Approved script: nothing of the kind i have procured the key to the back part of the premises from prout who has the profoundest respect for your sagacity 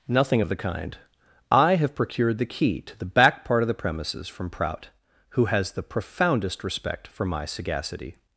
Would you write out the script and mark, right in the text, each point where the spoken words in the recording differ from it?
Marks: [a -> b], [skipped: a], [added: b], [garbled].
nothing of the kind i have procured the key to the back part of the premises from prout who has the profoundest respect for [your -> my] sagacity